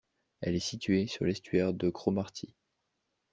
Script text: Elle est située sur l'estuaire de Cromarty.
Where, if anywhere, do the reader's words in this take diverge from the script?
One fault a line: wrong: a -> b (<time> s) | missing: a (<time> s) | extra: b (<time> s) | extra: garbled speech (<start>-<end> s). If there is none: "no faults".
no faults